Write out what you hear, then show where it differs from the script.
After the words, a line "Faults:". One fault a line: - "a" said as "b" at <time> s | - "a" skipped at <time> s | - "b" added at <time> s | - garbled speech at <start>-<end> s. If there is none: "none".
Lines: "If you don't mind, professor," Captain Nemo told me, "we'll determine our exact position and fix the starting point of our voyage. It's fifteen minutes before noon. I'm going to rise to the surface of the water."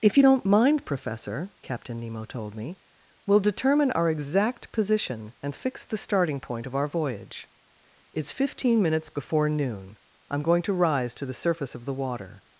"If you don't mind, professor," Captain Nemo told me, "we'll determine our exact position and fix the starting point of our voyage. It's fifteen minutes before noon. I'm going to rise to the surface of the water."
Faults:
none